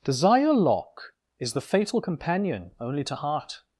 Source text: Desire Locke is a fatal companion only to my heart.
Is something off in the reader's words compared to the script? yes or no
yes